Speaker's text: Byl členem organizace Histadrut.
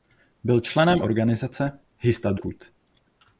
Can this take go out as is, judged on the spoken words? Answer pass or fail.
pass